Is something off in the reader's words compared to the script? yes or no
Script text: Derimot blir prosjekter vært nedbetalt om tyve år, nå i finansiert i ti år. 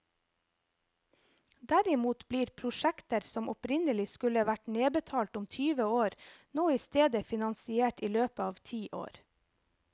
yes